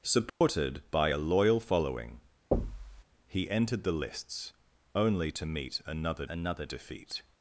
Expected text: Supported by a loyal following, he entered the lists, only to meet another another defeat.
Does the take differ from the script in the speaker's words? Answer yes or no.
no